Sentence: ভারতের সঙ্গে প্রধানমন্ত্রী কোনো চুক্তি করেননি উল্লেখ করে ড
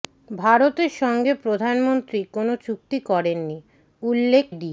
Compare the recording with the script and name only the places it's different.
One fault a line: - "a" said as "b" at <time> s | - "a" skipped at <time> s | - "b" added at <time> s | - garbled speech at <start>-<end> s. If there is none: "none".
- "করে" skipped at 4.5 s